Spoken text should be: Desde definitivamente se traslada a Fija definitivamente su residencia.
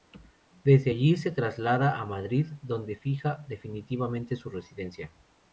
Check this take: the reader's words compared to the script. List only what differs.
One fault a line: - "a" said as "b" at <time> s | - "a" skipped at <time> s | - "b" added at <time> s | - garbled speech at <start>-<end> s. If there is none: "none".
- "definitivamente" said as "allí" at 0.9 s
- "Madrid donde" added at 2.1 s